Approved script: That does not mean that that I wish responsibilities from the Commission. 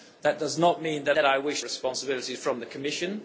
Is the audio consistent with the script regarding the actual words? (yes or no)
yes